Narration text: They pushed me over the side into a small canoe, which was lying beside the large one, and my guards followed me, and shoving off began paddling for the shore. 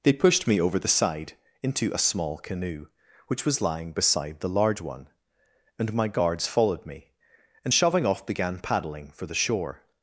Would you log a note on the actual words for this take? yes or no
no